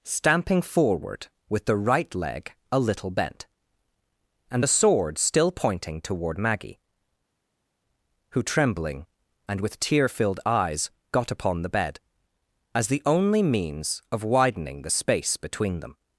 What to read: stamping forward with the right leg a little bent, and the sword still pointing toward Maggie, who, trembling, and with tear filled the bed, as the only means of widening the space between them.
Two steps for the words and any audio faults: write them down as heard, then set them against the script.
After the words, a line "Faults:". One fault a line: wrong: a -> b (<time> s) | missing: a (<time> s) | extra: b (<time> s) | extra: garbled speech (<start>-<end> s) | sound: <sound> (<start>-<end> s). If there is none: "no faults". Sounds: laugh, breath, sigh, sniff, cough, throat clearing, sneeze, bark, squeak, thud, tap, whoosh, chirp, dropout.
stamping forward with the right leg a little bent, and the sword still pointing toward Maggie, who, trembling, and with tear filled eyes, got upon the bed, as the only means of widening the space between them.
Faults:
extra: eyes got upon (10.4 s)